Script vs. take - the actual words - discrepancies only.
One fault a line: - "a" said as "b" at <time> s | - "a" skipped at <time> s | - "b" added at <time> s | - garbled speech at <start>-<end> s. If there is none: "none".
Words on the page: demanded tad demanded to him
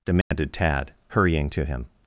- "demanded" said as "hurrying" at 1.1 s